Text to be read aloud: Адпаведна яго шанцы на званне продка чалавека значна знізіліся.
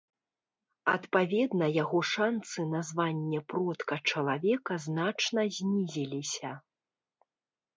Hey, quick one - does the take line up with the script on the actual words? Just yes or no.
yes